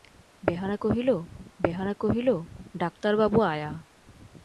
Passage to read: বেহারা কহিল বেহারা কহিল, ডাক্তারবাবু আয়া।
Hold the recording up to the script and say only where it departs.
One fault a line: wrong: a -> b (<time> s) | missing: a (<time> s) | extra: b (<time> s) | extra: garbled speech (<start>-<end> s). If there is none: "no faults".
no faults